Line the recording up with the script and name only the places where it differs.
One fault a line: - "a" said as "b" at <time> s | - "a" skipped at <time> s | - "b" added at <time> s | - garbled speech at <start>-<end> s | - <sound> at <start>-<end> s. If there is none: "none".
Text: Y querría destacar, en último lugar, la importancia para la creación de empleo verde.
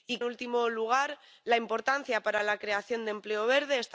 - "querría destacar en" skipped at 0.2 s